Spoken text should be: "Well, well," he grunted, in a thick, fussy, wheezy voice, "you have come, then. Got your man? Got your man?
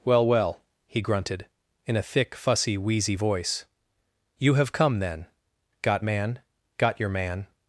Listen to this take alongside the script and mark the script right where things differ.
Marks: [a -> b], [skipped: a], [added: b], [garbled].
"Well, well," he grunted, in a thick, fussy, wheezy voice, "you have come, then. Got [skipped: your] man? Got your man?